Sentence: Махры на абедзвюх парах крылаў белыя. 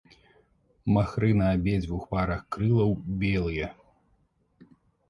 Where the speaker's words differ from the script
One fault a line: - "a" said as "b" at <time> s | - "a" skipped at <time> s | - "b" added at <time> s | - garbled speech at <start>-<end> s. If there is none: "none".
none